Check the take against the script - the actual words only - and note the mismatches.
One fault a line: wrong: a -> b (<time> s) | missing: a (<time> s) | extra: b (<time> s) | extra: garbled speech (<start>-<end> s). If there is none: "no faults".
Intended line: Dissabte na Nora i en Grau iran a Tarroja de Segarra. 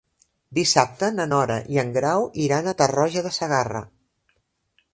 no faults